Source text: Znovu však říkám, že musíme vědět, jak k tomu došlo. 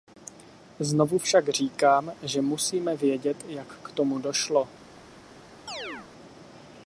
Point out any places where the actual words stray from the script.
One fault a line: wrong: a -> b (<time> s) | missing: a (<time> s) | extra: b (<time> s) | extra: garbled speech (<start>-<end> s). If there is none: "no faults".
no faults